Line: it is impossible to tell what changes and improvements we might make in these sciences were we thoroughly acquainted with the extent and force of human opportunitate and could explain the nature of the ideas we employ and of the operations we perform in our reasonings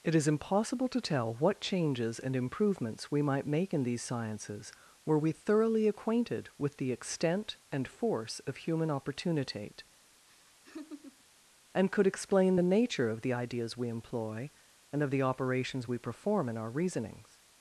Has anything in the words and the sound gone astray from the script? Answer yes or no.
yes